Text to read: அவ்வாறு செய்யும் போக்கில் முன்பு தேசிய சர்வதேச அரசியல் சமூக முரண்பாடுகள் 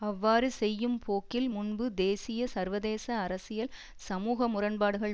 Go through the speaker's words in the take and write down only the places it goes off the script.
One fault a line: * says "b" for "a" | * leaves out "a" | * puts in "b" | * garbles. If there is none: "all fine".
all fine